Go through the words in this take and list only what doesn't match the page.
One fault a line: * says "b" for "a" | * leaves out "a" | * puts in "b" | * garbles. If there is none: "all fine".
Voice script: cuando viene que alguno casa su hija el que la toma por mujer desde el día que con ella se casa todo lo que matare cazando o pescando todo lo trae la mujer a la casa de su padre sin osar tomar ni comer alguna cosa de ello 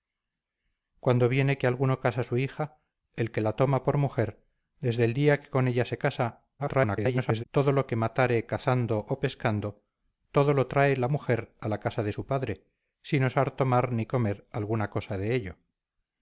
* garbles